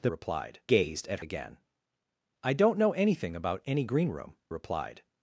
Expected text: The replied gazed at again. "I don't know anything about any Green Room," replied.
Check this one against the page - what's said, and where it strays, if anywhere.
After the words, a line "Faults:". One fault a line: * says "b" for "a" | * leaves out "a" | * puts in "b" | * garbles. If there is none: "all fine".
The replied gazed at again. "I don't know anything about any Green Room," replied.
Faults:
all fine